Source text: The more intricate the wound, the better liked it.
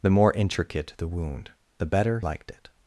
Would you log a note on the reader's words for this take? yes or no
no